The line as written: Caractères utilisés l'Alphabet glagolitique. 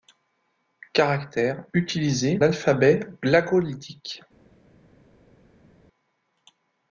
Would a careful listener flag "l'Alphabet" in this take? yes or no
no